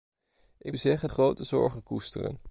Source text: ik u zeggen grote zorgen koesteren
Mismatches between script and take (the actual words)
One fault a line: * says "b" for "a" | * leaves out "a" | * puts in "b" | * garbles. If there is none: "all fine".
all fine